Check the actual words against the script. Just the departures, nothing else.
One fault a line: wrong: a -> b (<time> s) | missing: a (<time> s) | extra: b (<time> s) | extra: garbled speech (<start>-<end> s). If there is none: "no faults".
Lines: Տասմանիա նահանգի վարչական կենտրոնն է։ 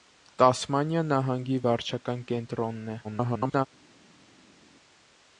extra: garbled speech (3.0-3.7 s)